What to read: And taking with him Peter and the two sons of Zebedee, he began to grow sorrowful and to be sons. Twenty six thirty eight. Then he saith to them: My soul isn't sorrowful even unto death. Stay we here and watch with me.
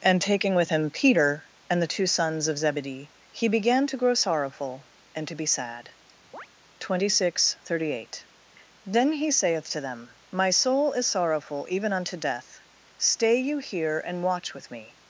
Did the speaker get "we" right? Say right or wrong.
wrong